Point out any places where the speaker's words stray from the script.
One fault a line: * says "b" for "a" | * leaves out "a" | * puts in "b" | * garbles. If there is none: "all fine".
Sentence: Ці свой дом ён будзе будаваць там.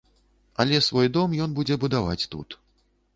* says "Але" for "Ці"
* says "тут" for "там"